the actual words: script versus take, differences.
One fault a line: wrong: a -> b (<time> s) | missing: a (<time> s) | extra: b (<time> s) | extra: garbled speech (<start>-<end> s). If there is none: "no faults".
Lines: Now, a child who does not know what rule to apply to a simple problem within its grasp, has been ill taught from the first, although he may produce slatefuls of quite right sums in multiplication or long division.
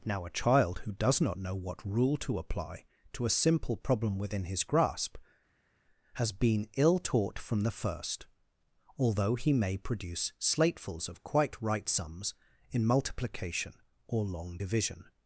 wrong: its -> his (4.5 s)